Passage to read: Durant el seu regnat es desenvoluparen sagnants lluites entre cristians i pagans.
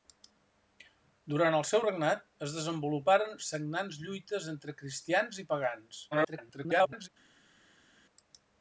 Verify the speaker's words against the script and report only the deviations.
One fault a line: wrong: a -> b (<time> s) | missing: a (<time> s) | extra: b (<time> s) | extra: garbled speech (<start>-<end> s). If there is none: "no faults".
extra: garbled speech (6.1-7.1 s)